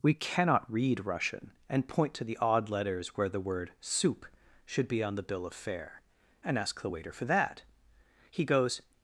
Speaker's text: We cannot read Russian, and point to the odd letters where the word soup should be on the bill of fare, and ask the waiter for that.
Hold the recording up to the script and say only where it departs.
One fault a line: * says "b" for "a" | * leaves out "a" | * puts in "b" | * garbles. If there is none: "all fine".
* puts in "He goes"